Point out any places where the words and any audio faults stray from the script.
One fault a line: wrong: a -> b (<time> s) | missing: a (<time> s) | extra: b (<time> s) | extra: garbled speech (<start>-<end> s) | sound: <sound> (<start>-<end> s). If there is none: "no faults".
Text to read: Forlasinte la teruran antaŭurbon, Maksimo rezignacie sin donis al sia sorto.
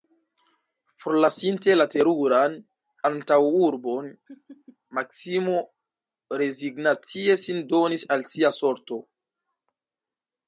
sound: laugh (4.3-4.8 s)